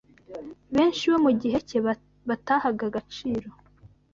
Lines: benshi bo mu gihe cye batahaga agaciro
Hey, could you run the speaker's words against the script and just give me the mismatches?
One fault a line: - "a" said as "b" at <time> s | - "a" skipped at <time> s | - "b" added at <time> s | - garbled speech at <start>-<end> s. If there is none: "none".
none